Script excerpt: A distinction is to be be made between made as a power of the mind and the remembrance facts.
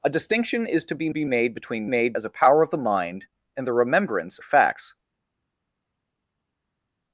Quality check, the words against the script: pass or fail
pass